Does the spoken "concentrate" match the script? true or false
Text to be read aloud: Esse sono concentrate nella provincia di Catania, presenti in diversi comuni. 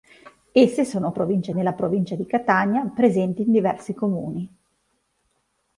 false